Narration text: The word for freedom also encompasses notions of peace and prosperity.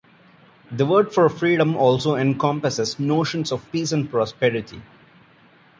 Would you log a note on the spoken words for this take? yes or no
no